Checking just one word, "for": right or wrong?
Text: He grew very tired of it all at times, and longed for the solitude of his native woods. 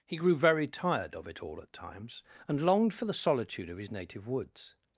right